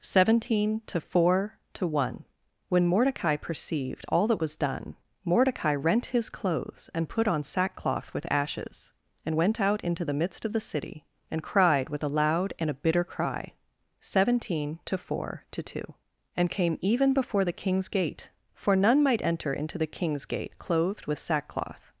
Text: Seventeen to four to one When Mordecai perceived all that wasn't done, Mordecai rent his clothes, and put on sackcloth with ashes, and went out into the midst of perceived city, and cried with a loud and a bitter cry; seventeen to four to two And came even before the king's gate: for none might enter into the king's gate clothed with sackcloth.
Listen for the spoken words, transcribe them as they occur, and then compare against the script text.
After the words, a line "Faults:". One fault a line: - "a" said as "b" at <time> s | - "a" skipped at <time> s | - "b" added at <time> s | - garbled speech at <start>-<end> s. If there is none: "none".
Seventeen to four to one When Mordecai perceived all that was done, Mordecai rent his clothes, and put on sackcloth with ashes, and went out into the midst of the city, and cried with a loud and a bitter cry; seventeen to four to two And came even before the king's gate: for none might enter into the king's gate clothed with sackcloth.
Faults:
- "wasn't" said as "was" at 4.4 s
- "perceived" said as "the" at 10.5 s